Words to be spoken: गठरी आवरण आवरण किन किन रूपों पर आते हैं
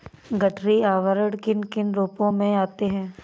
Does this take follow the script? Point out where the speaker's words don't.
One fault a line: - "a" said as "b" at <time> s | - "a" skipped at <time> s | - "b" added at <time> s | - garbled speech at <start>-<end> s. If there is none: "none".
- "आवरण" skipped at 1.4 s
- "पर" said as "में" at 2.3 s